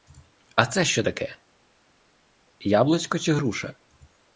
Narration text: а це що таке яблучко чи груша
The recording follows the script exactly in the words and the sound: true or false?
true